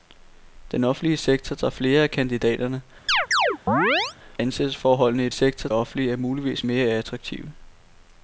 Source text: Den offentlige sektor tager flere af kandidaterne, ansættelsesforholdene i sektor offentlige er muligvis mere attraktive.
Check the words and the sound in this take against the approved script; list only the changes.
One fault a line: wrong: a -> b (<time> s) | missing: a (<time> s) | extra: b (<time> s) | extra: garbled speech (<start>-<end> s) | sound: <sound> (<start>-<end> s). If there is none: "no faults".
sound: chirp (3.1-4.2 s)